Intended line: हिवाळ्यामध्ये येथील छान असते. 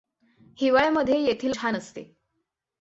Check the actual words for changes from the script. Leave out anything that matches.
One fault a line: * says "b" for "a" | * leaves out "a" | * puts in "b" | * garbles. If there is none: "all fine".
all fine